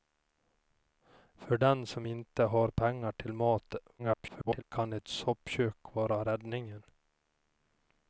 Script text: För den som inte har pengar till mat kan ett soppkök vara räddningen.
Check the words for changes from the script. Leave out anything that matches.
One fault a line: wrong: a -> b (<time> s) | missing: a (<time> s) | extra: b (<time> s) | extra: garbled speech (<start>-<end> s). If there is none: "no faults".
extra: garbled speech (4.0-4.6 s)